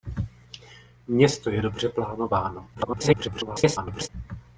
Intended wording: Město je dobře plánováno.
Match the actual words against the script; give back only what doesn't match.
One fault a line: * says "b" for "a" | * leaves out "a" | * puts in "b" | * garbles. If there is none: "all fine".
* garbles